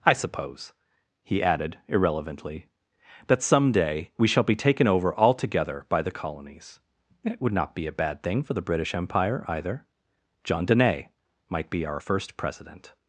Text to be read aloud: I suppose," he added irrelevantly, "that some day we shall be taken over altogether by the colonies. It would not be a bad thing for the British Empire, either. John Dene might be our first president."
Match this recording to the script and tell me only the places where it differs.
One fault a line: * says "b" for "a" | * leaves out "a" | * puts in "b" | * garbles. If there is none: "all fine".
all fine